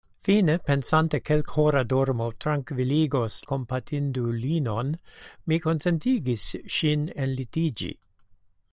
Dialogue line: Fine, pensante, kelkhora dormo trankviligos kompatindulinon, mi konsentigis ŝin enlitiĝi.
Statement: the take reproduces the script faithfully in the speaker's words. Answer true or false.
true